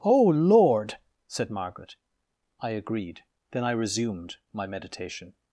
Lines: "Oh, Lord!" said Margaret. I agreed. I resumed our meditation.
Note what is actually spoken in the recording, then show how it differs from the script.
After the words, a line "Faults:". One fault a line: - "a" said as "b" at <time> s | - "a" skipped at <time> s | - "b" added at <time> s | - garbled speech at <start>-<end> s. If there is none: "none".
"Oh, Lord!" said Margaret. I agreed. Then I resumed my meditation.
Faults:
- "Then" added at 3.5 s
- "our" said as "my" at 4.5 s